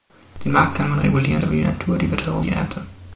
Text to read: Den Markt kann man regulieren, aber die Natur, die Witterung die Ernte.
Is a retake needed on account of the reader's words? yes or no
no